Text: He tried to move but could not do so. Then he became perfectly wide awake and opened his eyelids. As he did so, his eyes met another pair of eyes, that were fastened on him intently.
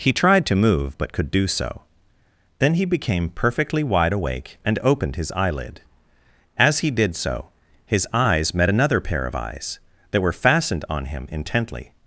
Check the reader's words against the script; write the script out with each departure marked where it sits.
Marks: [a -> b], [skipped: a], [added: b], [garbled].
He tried to move but could [skipped: not] do so. Then he became perfectly wide awake and opened his [eyelids. -> eyelid] As he did so, his eyes met another pair of eyes, that were fastened on him intently.